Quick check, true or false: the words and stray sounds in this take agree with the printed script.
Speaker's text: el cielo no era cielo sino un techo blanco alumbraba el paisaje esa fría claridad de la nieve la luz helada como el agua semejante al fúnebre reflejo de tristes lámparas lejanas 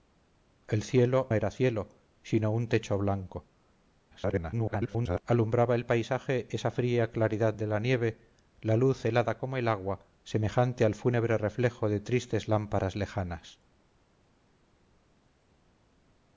false